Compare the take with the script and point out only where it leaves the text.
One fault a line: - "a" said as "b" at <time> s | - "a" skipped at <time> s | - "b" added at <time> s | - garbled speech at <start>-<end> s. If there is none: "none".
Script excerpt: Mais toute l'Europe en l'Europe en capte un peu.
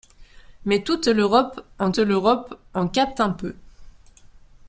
none